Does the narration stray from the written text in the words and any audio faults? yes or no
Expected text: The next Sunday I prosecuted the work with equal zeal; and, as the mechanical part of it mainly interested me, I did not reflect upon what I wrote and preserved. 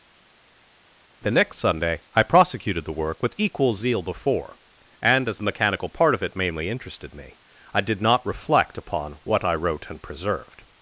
yes